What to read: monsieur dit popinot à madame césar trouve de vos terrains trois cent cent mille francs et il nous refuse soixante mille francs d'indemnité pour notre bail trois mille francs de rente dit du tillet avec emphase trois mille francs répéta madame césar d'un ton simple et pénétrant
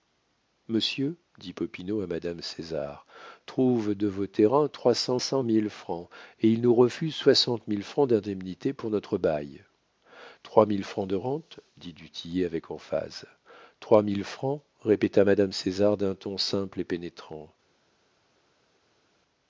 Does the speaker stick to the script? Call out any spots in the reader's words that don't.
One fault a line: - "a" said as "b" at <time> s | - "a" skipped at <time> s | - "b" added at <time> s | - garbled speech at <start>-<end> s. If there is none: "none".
none